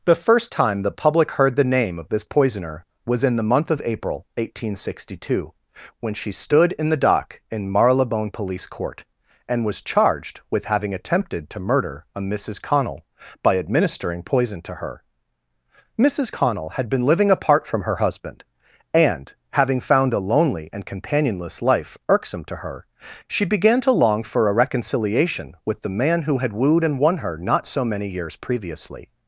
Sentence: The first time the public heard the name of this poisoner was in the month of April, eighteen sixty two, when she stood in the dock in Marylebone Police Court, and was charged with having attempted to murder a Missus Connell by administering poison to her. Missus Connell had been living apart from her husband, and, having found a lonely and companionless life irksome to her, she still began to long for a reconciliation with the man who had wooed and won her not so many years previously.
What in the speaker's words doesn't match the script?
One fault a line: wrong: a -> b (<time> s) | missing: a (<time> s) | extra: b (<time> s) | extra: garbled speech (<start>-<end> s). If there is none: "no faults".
missing: still (23.4 s)